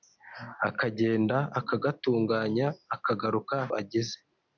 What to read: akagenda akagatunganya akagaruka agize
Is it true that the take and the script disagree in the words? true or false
false